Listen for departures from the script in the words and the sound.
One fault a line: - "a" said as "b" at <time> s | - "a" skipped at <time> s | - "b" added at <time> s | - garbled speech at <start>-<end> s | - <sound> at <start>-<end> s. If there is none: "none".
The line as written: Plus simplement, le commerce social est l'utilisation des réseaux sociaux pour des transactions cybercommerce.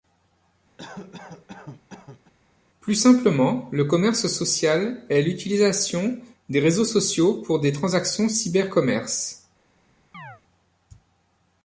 - cough at 0.8-2.3 s
- chirp at 10.1-10.4 s